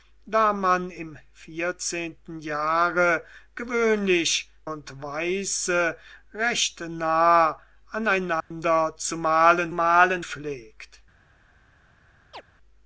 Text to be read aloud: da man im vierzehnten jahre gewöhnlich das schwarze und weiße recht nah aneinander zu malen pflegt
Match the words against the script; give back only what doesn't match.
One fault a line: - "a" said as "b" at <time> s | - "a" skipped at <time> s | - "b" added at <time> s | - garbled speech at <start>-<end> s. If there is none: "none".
- "das schwarze" skipped at 4.5 s
- "malen" added at 9.7 s